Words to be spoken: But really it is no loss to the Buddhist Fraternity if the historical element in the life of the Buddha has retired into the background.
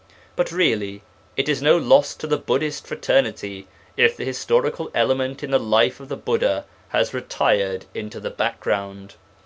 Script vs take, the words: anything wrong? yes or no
no